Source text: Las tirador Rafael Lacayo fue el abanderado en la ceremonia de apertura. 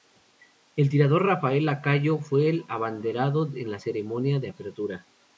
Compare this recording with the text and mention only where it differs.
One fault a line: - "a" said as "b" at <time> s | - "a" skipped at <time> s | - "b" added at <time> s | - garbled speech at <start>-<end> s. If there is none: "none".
- "Las" said as "El" at 0.8 s